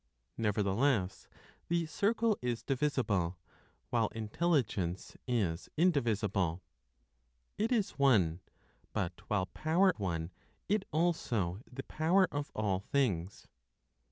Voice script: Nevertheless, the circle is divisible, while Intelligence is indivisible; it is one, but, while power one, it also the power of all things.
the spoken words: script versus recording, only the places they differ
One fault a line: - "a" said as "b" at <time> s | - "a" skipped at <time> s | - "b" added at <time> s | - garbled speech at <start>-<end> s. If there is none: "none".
none